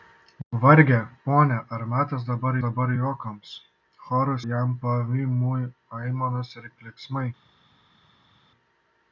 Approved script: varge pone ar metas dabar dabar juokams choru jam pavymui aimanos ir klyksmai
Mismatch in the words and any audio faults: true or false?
false